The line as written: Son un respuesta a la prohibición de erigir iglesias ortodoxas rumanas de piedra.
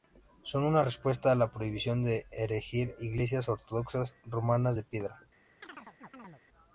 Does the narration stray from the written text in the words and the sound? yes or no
yes